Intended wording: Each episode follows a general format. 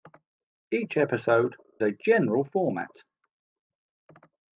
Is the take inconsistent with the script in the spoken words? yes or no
yes